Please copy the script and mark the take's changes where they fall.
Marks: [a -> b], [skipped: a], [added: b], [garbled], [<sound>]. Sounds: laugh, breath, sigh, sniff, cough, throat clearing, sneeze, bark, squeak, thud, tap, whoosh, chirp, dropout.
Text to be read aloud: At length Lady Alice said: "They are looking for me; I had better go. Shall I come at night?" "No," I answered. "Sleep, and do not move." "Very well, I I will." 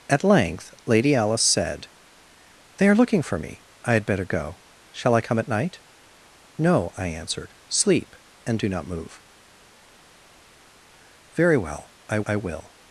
At length Lady Alice said: "They are looking for me; I had better go. Shall I come at night?" "No," I answered. "Sleep, and do not move." "Very well, I I will."